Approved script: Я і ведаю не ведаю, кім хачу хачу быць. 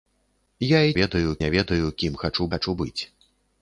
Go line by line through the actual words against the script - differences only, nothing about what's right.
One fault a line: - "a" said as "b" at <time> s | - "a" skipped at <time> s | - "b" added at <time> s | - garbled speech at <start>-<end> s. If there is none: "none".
none